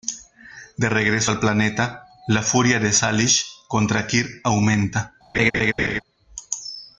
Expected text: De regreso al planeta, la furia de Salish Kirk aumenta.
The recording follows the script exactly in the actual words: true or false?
false